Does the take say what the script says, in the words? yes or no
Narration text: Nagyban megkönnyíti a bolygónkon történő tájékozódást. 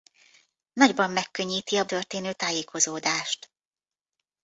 no